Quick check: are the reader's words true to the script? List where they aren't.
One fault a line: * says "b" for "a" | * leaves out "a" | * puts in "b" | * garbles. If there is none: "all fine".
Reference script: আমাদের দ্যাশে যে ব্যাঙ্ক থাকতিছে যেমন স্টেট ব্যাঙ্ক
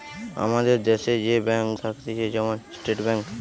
all fine